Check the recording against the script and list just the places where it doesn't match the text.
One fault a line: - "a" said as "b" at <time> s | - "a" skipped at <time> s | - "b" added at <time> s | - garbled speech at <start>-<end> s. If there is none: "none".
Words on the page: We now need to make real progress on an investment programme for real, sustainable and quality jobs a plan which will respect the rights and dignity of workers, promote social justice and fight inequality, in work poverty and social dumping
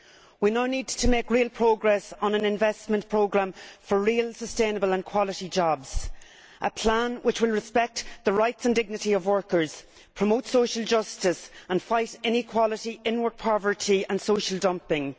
none